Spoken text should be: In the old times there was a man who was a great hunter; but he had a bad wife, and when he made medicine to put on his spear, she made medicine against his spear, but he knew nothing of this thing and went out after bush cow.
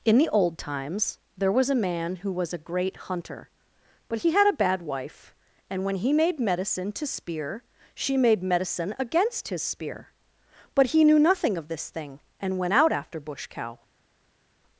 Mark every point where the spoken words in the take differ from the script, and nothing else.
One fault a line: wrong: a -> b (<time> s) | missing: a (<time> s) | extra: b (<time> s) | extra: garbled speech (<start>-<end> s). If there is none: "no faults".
missing: put on his (7.0 s)